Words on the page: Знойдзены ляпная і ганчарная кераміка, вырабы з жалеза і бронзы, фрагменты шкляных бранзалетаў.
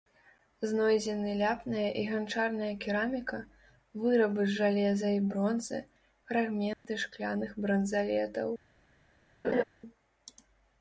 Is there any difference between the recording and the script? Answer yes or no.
no